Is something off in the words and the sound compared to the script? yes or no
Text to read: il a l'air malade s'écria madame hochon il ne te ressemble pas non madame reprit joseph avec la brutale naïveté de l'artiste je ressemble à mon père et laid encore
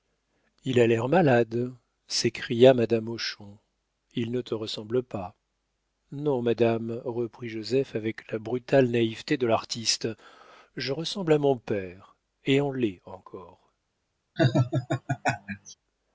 yes